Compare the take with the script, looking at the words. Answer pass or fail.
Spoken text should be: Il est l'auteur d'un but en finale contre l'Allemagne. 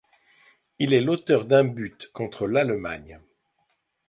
fail